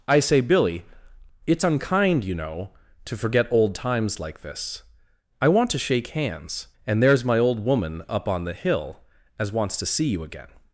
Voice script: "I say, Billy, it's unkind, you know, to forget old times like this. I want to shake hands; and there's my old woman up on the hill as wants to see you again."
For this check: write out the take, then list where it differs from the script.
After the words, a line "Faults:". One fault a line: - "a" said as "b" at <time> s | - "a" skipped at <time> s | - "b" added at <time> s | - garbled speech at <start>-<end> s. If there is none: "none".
"I say, Billy, it's unkind, you know, to forget old times like this. I want to shake hands; and there's my old woman up on the hill as wants to see you again."
Faults:
none